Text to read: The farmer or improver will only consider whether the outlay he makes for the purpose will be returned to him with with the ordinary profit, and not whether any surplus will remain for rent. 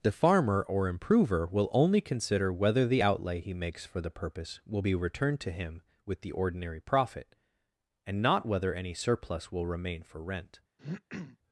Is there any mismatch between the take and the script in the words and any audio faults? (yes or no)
yes